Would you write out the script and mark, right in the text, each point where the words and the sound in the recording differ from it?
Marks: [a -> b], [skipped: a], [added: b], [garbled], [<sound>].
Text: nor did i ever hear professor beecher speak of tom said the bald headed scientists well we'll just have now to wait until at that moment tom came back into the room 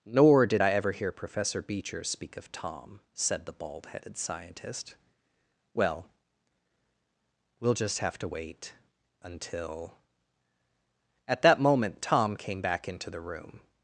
nor did i ever hear professor beecher speak of tom said the bald headed [scientists -> scientist] well we'll just have [skipped: now] to wait until at that moment tom came back into the room